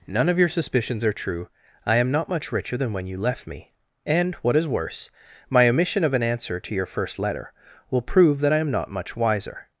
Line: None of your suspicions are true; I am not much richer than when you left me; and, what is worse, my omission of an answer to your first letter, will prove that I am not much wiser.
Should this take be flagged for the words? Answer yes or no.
no